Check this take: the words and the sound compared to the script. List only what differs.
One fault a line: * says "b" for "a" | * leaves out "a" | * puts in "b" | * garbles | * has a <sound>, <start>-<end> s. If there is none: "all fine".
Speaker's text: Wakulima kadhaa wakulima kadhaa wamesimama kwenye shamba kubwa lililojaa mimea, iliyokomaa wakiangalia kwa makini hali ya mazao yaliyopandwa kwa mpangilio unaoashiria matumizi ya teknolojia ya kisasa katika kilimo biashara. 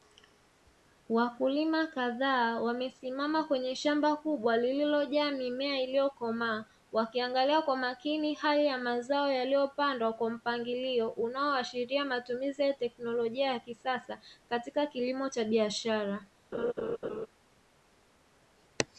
* leaves out "wakulima kadhaa"
* puts in "cha"
* has a laugh, 16.5-17.3 s